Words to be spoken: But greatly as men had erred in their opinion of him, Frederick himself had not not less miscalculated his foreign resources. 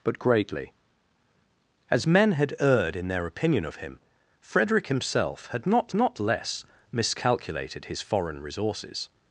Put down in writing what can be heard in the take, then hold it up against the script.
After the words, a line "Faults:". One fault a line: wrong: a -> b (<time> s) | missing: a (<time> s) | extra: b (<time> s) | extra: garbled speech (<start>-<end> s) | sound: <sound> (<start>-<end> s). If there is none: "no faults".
But greatly as men had erred in their opinion of him, Frederick himself had not not less miscalculated his foreign resources.
Faults:
no faults